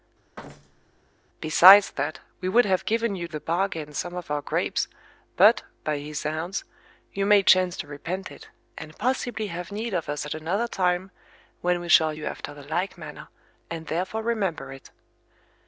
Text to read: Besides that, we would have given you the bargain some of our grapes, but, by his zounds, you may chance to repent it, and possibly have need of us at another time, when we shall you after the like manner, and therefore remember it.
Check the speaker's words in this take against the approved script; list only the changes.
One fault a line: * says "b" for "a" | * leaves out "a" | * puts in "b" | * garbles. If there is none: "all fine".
all fine